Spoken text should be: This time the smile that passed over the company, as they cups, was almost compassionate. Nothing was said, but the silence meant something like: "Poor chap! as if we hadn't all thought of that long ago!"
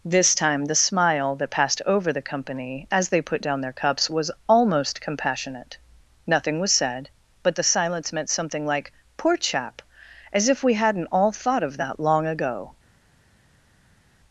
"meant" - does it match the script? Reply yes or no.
yes